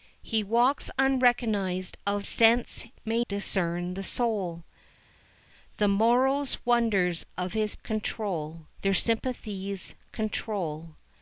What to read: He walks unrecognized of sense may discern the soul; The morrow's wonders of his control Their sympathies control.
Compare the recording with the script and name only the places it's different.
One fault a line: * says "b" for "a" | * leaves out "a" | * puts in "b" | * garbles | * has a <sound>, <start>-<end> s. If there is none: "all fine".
all fine